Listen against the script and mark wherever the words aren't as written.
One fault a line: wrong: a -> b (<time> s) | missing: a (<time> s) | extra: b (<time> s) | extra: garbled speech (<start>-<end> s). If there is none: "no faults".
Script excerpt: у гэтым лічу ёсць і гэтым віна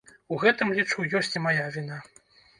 wrong: гэтым -> мая (1.5 s)